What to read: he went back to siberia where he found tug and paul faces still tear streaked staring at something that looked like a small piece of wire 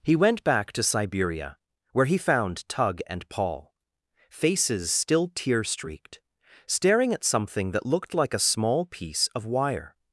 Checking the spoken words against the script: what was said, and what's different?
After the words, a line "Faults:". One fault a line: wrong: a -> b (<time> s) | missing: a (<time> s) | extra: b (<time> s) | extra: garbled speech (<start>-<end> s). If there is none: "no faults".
he went back to siberia where he found tug and paul faces still tear streaked staring at something that looked like a small piece of wire
Faults:
no faults